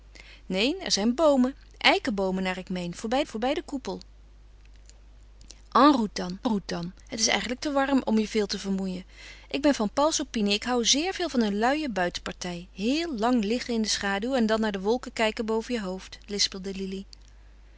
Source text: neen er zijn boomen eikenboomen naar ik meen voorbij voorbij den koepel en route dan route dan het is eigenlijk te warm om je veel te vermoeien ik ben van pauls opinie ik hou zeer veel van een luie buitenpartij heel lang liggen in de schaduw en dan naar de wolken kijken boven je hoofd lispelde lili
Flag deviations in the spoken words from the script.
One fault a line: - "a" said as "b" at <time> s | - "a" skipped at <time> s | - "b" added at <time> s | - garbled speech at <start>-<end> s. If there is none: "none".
none